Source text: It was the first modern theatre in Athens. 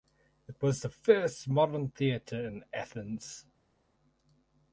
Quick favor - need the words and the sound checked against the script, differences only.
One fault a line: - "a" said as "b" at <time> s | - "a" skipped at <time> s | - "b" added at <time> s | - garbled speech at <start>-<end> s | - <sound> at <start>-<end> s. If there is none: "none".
none